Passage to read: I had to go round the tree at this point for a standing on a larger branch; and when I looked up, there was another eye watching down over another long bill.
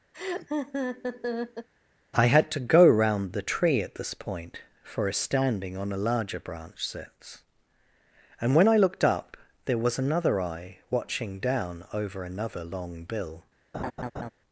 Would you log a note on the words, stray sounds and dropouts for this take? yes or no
yes